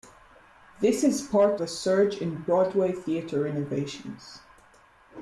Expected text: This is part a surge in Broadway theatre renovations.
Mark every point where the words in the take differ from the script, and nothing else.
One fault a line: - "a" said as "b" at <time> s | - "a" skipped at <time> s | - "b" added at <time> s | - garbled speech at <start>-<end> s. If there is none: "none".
none